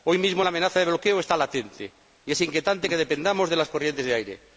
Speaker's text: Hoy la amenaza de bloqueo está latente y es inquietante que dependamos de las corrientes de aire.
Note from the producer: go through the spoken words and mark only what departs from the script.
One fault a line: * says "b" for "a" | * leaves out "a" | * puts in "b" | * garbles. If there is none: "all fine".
* puts in "mismo"